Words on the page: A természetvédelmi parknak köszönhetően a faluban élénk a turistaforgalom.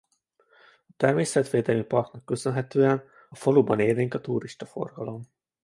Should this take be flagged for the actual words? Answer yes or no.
yes